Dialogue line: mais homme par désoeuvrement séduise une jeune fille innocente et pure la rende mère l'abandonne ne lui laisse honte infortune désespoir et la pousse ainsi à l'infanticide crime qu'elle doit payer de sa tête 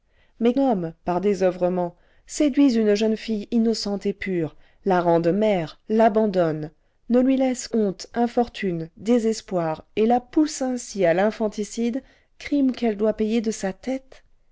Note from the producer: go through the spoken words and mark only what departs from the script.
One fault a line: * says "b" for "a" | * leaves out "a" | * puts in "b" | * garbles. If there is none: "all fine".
all fine